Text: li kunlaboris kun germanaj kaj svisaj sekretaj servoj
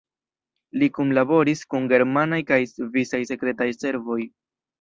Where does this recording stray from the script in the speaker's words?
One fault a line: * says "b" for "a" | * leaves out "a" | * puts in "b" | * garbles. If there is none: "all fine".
all fine